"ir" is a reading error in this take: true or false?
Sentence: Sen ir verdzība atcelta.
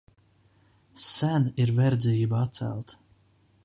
false